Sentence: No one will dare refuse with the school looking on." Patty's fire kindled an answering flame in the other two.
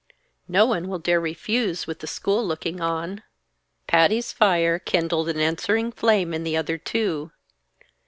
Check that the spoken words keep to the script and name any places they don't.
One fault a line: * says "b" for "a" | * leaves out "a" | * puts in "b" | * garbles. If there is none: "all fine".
all fine